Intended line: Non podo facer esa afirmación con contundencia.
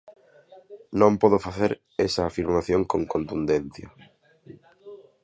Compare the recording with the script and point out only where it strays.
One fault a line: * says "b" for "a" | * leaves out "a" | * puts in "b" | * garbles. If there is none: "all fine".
all fine